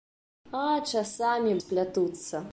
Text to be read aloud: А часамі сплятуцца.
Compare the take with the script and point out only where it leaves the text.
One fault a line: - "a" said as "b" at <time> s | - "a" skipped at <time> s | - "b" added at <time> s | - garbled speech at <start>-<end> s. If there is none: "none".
none